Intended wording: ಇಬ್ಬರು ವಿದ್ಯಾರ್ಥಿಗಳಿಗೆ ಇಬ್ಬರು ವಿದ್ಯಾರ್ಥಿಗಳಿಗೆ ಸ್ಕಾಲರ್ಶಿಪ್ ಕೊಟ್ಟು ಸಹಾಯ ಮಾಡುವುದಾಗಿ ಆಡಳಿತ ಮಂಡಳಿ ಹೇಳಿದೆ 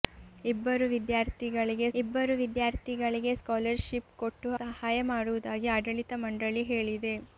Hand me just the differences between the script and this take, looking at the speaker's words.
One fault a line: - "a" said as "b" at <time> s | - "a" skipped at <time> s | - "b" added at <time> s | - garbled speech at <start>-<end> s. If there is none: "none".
none